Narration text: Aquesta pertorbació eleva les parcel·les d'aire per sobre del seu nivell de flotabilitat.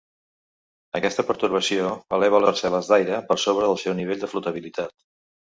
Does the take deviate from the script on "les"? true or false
true